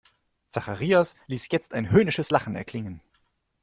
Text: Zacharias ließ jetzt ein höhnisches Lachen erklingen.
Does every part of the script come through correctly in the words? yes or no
yes